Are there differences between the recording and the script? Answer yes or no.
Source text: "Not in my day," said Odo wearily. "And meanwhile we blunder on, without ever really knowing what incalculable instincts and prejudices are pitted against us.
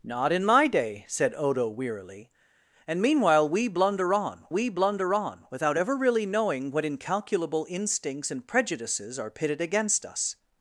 yes